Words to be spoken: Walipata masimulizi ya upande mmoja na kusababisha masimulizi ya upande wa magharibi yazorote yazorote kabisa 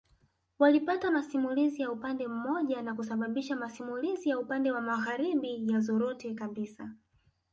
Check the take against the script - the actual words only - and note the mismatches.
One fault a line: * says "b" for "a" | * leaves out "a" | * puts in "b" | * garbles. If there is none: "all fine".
* leaves out "yazorote"